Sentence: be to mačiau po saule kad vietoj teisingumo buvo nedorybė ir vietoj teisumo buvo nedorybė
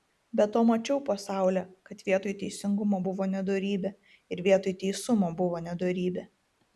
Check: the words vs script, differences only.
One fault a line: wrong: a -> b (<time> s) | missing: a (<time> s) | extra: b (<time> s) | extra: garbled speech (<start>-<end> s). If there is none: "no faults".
no faults